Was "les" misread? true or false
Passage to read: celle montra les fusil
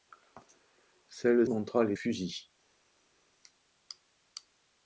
false